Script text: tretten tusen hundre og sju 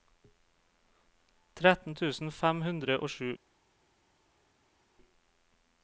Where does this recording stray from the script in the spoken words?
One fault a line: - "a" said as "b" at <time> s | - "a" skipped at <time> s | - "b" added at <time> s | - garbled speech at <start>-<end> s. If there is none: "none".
- "fem" added at 2.4 s